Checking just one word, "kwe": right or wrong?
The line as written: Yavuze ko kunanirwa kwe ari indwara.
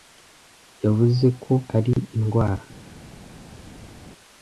wrong